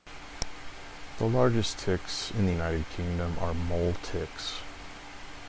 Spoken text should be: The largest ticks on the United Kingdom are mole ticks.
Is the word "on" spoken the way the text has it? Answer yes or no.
no